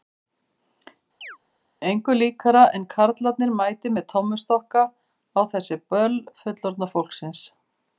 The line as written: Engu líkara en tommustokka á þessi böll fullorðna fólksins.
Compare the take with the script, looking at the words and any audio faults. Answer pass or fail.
fail